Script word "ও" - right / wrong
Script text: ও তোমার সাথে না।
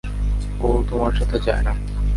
right